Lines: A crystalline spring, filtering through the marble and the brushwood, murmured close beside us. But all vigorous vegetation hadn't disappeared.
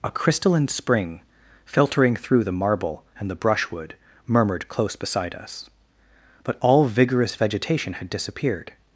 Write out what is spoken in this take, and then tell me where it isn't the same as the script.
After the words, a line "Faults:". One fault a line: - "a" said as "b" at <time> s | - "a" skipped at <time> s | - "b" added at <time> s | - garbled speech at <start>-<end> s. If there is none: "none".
A crystalline spring, filtering through the marble and the brushwood, murmured close beside us. But all vigorous vegetation had disappeared.
Faults:
- "hadn't" said as "had" at 7.9 s